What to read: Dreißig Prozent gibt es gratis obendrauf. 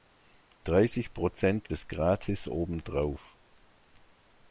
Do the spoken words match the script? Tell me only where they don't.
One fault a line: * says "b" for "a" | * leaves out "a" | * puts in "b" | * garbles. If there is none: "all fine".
* leaves out "gibt"